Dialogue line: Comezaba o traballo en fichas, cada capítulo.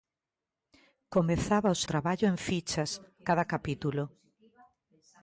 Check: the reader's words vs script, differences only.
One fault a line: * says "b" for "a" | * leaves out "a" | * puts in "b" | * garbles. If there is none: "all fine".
all fine